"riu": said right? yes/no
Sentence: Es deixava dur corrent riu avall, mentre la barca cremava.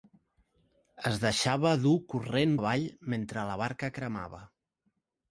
no